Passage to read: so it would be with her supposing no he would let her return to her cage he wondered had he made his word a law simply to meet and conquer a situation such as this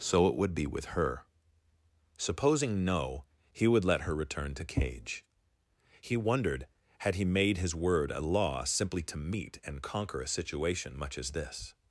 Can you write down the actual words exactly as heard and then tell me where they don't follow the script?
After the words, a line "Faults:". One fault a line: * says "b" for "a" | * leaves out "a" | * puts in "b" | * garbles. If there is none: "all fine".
so it would be with her supposing no he would let her return to cage he wondered had he made his word a law simply to meet and conquer a situation much as this
Faults:
* leaves out "her"
* says "much" for "such"